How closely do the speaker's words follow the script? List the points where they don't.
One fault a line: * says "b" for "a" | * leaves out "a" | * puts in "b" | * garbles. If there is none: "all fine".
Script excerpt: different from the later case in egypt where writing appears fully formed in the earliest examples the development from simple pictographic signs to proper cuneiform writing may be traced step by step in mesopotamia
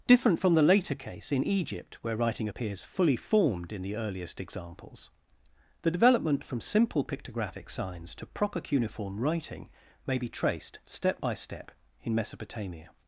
all fine